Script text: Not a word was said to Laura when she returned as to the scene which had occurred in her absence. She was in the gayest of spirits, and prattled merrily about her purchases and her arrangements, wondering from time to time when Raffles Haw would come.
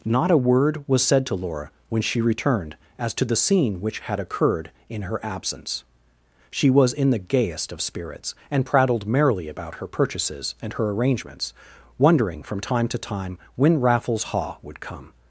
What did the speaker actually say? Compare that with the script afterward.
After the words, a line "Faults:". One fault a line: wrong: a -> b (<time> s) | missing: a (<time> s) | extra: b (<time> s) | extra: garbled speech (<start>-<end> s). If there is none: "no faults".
Not a word was said to Laura when she returned as to the scene which had occurred in her absence. She was in the gayest of spirits, and prattled merrily about her purchases and her arrangements, wondering from time to time when Raffles Haw would come.
Faults:
no faults